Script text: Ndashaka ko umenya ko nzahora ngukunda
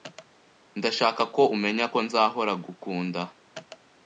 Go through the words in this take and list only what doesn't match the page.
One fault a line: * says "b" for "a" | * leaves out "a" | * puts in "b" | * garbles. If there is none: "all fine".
all fine